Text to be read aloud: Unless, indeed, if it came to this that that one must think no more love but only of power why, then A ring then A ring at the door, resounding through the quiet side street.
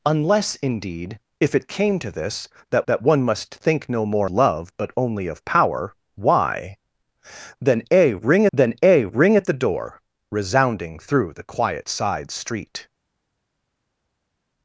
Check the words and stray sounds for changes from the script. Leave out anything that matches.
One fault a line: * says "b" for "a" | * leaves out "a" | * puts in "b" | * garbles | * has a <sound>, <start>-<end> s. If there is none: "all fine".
all fine